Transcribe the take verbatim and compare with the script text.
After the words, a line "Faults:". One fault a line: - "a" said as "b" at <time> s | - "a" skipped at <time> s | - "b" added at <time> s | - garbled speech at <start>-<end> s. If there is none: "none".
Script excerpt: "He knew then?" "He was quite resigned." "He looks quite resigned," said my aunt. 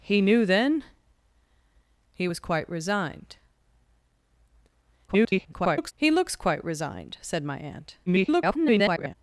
"He knew then?" "He was quite resigned." [garbled] "He looks quite resigned," said my aunt. [garbled]
Faults:
- garbled speech at 5.1-5.9 s
- garbled speech at 8.1-9.2 s